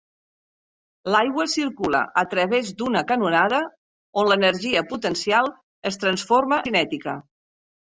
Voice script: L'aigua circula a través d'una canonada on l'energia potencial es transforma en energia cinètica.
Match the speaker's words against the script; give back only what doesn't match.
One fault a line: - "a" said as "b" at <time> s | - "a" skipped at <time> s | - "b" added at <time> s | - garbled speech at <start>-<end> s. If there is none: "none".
- "en energia" skipped at 6.6 s